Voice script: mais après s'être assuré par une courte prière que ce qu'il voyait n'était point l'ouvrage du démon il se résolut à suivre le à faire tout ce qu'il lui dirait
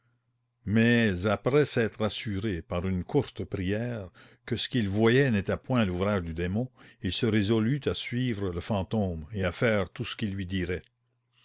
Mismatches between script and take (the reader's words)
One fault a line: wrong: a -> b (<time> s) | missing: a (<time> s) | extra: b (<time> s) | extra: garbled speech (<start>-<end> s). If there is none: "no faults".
extra: fantôme et (8.6 s)